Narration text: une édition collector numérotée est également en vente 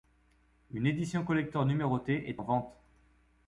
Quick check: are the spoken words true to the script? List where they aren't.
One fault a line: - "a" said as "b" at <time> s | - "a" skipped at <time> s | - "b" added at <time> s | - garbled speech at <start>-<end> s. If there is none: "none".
- "également" skipped at 2.4 s